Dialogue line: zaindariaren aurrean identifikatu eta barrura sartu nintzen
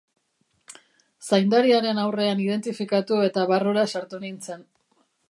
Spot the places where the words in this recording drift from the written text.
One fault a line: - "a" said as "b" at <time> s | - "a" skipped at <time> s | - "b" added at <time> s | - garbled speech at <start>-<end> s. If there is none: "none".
none